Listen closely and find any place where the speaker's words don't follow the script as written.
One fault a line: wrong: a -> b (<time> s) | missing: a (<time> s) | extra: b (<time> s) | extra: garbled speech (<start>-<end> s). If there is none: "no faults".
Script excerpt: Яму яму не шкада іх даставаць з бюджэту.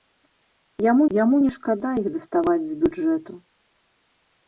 no faults